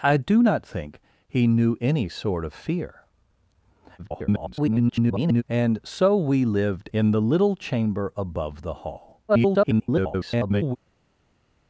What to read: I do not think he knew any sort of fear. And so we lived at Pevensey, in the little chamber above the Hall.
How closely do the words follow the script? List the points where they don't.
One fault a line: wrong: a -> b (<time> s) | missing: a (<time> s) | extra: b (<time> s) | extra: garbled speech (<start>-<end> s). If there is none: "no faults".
extra: garbled speech (4.0-5.4 s)
missing: at Pevensey (6.9 s)
extra: garbled speech (9.3-10.8 s)